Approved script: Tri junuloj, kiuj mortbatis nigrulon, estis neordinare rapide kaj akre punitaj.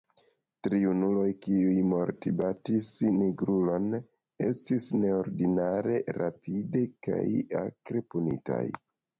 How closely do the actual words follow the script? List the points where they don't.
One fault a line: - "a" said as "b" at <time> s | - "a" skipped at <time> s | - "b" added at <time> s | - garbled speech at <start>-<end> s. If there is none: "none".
none